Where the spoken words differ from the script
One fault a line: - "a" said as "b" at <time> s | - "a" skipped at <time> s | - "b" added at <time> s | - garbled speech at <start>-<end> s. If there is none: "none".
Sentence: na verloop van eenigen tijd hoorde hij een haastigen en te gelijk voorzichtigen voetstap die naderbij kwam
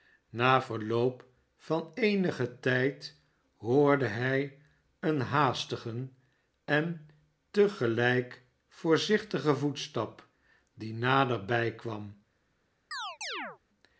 none